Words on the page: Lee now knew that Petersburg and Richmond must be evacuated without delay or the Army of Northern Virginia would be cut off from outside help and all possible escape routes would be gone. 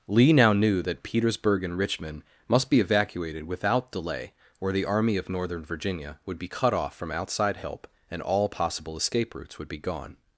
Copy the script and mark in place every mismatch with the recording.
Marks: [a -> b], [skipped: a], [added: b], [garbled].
Lee now knew that Petersburg and Richmond must be evacuated without delay or the Army of Northern Virginia would be cut off from outside help and all possible escape routes would be gone.